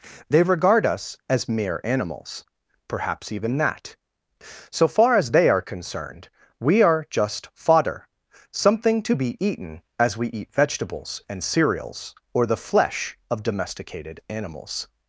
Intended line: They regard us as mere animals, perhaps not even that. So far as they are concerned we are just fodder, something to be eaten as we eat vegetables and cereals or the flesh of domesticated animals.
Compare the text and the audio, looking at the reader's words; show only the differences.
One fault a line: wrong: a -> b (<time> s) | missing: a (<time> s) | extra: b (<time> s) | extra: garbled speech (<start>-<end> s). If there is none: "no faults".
missing: not (3.3 s)